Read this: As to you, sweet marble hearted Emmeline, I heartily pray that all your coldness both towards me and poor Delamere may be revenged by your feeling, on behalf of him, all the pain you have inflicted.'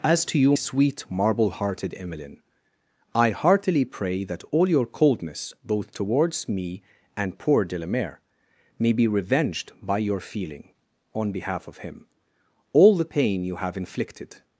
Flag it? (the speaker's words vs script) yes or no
no